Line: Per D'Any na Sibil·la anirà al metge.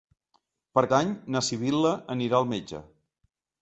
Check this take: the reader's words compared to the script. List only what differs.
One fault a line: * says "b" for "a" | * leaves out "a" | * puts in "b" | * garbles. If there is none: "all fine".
all fine